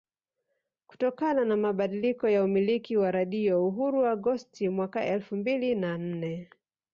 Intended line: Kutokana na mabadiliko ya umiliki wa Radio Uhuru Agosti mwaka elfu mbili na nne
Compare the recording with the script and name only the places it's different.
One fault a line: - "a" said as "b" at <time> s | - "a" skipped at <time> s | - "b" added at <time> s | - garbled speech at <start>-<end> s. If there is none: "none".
none